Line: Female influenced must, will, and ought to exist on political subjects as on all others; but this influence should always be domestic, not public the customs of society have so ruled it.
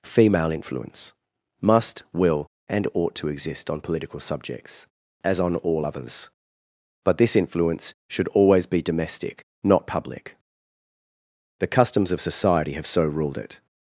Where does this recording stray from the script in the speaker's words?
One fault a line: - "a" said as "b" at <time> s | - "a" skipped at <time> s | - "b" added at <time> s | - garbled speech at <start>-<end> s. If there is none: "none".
- "influenced" said as "influence" at 0.5 s